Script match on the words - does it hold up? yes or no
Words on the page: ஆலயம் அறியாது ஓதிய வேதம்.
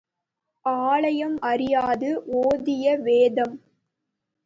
yes